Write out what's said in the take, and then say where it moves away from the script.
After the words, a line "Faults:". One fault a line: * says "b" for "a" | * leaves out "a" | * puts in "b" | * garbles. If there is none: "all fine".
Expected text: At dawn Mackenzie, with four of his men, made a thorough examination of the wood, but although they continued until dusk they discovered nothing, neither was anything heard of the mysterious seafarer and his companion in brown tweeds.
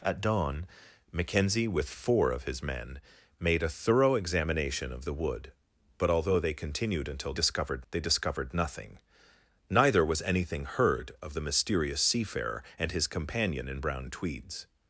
At dawn Mackenzie, with four of his men, made a thorough examination of the wood, but although they continued until discovered they discovered nothing, neither was anything heard of the mysterious seafarer and his companion in brown tweeds.
Faults:
* says "discovered" for "dusk"